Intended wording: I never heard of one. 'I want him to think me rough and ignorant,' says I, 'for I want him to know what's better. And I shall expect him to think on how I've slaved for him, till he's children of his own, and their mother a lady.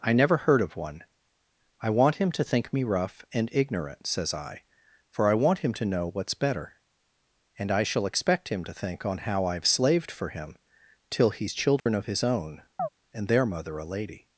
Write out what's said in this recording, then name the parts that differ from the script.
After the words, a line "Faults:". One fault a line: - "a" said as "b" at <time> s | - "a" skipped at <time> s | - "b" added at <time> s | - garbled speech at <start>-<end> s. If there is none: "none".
I never heard of one. 'I want him to think me rough and ignorant,' says I, 'for I want him to know what's better. And I shall expect him to think on how I've slaved for him, till he's children of his own, and their mother a lady.
Faults:
none